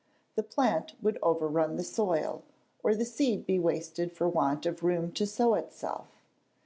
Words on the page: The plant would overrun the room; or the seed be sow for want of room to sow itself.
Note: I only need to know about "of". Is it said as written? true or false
true